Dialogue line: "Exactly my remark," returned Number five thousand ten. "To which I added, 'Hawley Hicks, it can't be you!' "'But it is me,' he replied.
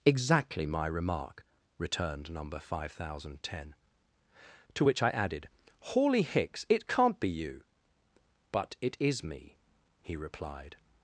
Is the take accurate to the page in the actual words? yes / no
yes